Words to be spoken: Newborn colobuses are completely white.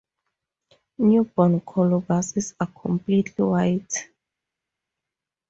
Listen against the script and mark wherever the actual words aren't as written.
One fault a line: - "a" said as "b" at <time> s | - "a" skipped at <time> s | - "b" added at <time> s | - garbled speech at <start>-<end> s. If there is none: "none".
none